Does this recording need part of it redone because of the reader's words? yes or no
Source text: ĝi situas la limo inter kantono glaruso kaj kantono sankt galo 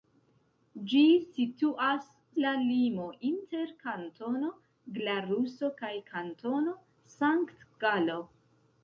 no